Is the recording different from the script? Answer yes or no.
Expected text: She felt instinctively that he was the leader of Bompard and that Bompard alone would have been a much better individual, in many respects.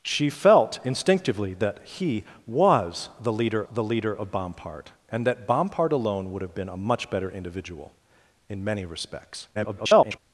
yes